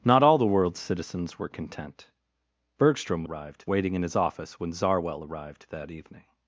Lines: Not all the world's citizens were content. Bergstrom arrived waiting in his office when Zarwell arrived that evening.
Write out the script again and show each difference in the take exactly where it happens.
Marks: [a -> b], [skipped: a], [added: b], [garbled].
Not all the world's citizens were content. Bergstrom arrived waiting in his office when Zarwell arrived that evening.